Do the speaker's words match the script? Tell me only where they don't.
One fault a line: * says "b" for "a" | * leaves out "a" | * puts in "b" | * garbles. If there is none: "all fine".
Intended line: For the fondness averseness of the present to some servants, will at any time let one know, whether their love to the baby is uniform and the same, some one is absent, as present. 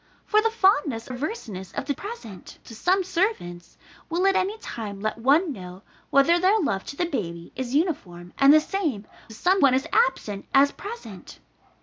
all fine